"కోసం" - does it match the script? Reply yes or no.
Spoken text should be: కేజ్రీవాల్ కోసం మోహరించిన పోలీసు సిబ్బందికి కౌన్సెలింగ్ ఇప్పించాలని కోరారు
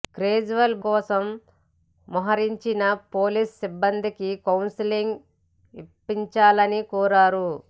yes